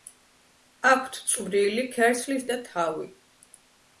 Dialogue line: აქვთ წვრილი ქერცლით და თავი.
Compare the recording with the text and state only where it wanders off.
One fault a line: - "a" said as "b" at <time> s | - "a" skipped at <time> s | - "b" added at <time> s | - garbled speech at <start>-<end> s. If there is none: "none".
none